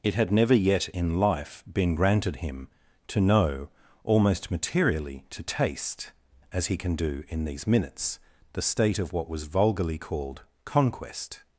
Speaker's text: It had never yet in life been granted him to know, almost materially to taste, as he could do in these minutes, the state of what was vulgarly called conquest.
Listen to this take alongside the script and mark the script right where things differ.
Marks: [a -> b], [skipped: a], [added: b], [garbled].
It had never yet in life been granted him to know, almost materially to taste, as he [could -> can] do in these minutes, the state of what was vulgarly called conquest.